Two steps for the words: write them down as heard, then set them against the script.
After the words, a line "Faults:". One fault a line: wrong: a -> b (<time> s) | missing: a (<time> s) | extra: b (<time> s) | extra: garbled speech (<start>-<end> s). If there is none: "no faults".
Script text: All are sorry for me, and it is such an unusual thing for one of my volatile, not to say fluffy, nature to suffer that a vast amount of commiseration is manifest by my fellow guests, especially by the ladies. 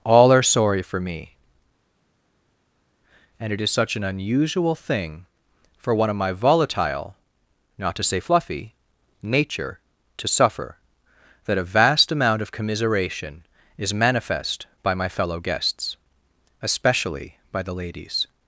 All are sorry for me, and it is such an unusual thing for one of my volatile, not to say fluffy, nature to suffer that a vast amount of commiseration is manifest by my fellow guests, especially by the ladies.
Faults:
no faults